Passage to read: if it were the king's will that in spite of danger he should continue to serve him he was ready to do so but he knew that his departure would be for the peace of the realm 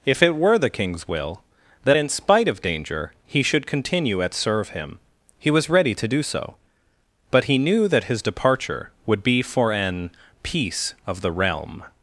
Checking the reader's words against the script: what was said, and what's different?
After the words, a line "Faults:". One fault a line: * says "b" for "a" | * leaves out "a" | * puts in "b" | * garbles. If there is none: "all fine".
if it were the king's will that in spite of danger he should continue at serve him he was ready to do so but he knew that his departure would be for an peace of the realm
Faults:
* says "at" for "to"
* says "an" for "the"